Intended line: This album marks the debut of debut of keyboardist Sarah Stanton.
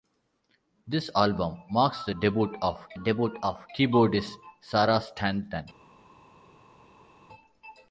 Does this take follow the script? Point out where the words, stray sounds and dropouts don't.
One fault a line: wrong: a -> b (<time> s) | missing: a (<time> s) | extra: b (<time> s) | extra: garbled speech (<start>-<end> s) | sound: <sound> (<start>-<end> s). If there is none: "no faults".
no faults